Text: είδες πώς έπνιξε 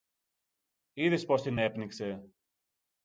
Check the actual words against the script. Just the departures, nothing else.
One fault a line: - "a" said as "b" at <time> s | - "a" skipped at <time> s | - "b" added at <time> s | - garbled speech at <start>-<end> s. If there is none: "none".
- "την" added at 1.4 s